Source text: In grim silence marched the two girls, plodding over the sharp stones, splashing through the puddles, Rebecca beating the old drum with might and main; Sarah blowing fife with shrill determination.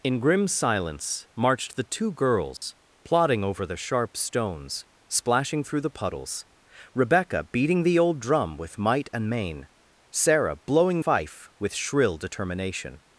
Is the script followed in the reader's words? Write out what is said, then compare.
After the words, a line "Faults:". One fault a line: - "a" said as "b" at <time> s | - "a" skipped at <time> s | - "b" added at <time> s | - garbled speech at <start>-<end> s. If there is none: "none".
In grim silence marched the two girls, plodding over the sharp stones, splashing through the puddles, Rebecca beating the old drum with might and main; Sarah blowing fife with shrill determination.
Faults:
none